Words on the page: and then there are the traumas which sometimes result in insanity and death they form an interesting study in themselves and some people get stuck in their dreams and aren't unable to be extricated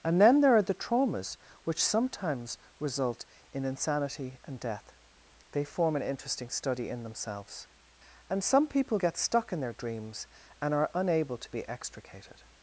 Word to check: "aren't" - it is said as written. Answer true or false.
false